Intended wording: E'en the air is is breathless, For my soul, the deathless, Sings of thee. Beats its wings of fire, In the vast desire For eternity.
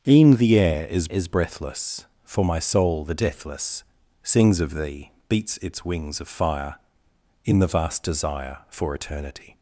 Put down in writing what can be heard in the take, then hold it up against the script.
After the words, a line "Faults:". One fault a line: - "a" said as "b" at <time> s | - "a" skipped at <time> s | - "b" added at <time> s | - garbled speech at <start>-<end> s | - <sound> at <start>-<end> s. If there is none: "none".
E'en the air is is breathless, For my soul, the deathless, Sings of thee. Beats its wings of fire, In the vast desire For eternity.
Faults:
none